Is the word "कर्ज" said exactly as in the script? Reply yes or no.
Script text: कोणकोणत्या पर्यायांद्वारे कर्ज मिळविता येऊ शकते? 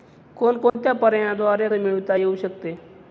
no